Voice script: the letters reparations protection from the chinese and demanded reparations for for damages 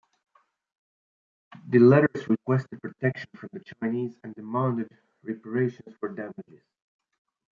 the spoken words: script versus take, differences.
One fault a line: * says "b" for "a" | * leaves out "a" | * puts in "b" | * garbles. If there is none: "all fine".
* says "requested" for "reparations"
* leaves out "for"